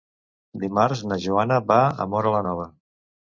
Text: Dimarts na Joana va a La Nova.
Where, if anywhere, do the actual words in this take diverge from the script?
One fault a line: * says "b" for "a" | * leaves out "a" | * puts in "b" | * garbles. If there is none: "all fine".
* puts in "Móra"